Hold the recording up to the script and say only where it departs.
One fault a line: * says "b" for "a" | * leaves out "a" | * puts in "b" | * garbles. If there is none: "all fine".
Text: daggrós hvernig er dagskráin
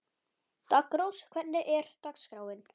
all fine